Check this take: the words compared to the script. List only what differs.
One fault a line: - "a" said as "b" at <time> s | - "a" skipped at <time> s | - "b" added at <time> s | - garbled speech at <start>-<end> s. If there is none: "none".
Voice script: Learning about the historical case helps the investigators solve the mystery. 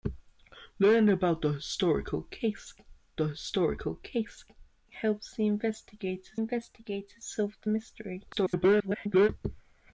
- "the historical case" added at 3.2 s
- "investigators" added at 6.3 s
- garbled speech at 8.3-9.3 s